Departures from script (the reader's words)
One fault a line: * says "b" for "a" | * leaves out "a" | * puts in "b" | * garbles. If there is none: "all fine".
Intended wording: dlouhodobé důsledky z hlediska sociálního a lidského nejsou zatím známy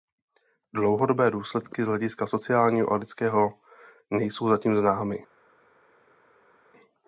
all fine